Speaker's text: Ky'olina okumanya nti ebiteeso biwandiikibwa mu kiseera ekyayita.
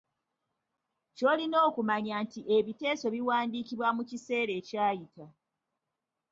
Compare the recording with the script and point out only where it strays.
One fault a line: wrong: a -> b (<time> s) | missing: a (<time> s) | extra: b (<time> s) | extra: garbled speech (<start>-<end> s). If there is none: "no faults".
no faults